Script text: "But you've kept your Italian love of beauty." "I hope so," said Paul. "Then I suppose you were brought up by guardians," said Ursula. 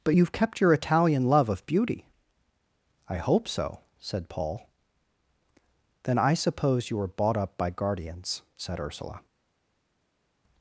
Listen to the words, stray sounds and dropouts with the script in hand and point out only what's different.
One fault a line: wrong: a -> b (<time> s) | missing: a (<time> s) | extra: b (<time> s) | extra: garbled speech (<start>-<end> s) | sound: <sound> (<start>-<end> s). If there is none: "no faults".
wrong: brought -> bought (7.1 s)